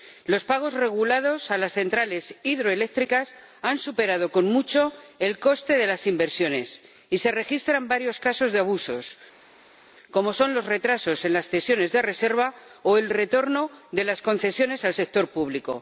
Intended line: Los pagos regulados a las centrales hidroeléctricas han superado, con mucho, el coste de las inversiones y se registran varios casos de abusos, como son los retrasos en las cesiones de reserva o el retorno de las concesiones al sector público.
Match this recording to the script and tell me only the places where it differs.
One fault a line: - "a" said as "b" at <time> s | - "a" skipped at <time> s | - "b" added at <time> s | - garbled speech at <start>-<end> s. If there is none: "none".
none